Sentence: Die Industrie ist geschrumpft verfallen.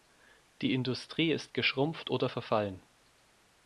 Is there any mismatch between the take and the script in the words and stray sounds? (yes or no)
yes